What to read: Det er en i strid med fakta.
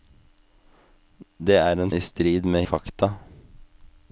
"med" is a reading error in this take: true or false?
false